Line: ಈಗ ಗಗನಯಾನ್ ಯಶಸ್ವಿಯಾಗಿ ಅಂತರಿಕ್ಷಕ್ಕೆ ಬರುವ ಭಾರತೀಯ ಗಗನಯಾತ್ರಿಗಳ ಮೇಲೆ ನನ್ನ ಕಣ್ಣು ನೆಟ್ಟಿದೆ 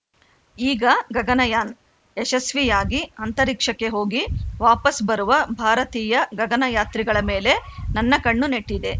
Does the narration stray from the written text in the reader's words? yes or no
yes